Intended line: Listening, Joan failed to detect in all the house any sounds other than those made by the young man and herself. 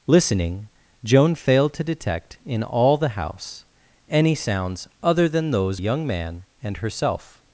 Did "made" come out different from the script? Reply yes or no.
yes